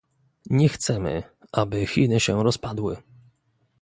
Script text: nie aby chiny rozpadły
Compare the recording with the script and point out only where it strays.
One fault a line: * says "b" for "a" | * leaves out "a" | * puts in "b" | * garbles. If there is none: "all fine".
* puts in "chcemy"
* puts in "się"